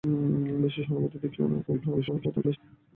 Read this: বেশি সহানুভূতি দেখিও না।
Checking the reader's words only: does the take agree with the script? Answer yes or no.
no